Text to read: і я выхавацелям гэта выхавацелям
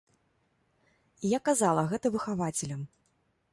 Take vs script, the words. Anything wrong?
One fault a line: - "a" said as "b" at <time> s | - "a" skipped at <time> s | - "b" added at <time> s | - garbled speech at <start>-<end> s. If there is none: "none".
- "выхавацелям" said as "казала" at 1.5 s